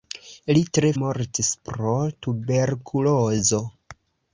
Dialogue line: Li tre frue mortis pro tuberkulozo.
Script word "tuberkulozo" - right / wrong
right